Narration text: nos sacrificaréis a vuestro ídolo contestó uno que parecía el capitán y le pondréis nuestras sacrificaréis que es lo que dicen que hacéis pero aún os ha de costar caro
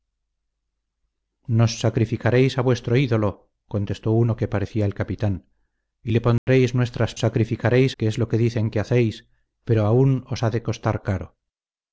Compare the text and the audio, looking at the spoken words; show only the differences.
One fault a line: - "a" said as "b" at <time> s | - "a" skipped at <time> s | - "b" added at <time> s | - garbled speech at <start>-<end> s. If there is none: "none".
none